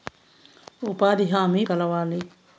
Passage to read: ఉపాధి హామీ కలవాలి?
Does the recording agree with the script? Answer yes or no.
yes